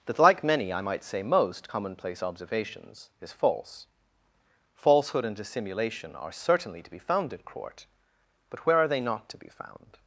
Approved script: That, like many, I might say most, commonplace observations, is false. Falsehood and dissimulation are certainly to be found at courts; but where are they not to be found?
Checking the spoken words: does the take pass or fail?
fail